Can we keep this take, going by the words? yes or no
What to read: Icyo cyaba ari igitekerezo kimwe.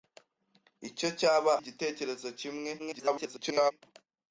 no